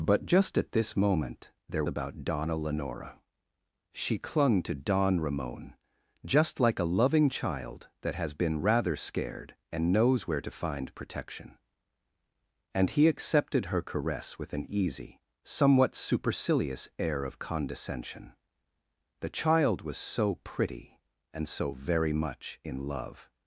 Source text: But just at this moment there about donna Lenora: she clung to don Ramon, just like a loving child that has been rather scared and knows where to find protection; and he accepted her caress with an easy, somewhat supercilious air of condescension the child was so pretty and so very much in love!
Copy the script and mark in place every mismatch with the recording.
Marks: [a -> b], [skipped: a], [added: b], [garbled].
But just at this moment there about donna Lenora: she clung to don Ramon, just like a loving child that has been rather scared and knows where to find protection; and he accepted her caress with an easy, somewhat supercilious air of condescension the child was so pretty and so very much in love!